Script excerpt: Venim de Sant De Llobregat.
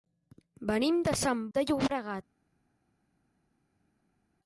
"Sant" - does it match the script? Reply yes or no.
yes